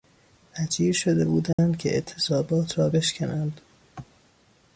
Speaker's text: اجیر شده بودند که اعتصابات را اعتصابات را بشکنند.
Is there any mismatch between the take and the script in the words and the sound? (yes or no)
yes